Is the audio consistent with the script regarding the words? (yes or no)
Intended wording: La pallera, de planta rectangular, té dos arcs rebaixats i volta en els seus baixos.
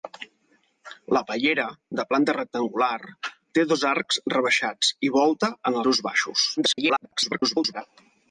no